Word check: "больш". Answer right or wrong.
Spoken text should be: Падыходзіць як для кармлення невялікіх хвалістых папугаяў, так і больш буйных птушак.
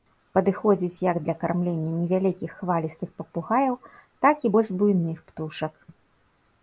right